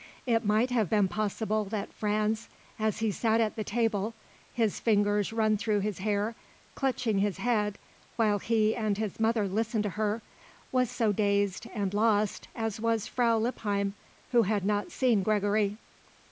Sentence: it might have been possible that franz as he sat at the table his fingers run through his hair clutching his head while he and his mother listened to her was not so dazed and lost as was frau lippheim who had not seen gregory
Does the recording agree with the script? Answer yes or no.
no